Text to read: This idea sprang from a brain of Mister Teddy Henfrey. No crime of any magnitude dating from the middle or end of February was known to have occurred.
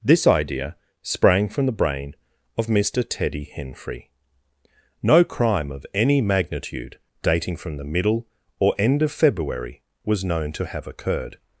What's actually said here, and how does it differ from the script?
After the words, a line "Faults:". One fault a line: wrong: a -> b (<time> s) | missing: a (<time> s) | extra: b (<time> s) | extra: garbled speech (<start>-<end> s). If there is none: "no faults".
This idea sprang from the brain of Mister Teddy Henfrey. No crime of any magnitude dating from the middle or end of February was known to have occurred.
Faults:
wrong: a -> the (1.7 s)